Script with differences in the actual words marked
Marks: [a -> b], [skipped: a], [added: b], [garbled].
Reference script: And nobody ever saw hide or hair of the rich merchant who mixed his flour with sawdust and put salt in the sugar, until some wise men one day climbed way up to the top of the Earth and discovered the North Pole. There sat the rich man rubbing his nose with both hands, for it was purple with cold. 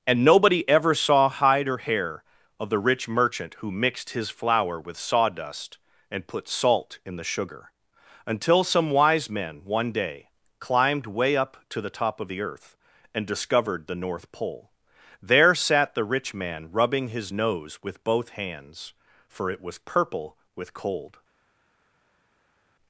And nobody ever saw hide or hair of the rich merchant who mixed his flour with sawdust and put salt in the sugar, until some wise men one day climbed way up to the top of the Earth and discovered the North Pole. There sat the rich man rubbing his nose with both hands, for it was purple with cold.